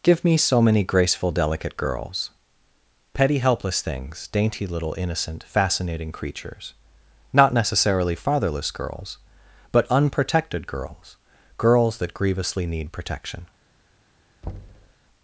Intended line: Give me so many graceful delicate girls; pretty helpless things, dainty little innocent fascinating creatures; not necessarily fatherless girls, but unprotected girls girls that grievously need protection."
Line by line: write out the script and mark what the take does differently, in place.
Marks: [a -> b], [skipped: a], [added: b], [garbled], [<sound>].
Give me so many graceful delicate girls; [pretty -> petty] helpless things, dainty little innocent fascinating creatures; not necessarily fatherless girls, but unprotected girls girls that grievously need protection." [thud]